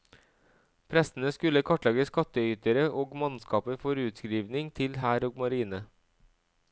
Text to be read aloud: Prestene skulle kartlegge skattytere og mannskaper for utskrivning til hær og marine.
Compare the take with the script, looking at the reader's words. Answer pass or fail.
pass